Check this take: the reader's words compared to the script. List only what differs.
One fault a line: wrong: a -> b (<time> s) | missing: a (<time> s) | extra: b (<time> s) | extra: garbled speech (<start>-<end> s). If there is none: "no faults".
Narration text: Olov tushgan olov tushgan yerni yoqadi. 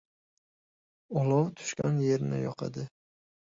missing: olov tushgan (2.0 s)